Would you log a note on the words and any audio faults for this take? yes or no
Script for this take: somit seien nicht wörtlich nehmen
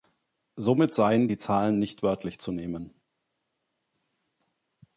yes